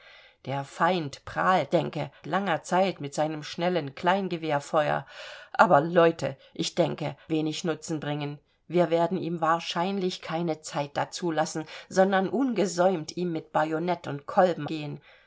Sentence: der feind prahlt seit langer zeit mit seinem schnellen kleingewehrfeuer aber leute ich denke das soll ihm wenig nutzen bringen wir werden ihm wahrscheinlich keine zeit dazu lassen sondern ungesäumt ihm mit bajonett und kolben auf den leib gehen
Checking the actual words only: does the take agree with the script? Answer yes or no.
no